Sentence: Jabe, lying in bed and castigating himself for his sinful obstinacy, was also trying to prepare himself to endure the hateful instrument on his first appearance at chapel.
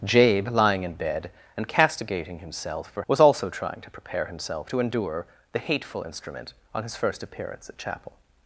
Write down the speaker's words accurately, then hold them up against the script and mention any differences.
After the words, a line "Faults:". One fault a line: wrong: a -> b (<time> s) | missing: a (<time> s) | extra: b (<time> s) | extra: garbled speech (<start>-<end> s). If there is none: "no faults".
Jabe, lying in bed and castigating himself for was also trying to prepare himself to endure the hateful instrument on his first appearance at chapel.
Faults:
missing: his sinful obstinacy (3.0 s)